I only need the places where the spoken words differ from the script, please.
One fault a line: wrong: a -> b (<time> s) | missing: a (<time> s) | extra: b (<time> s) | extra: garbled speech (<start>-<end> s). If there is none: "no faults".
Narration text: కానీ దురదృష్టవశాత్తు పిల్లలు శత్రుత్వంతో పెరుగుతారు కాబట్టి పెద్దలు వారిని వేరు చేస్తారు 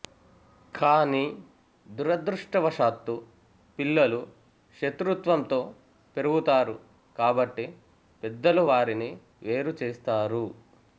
no faults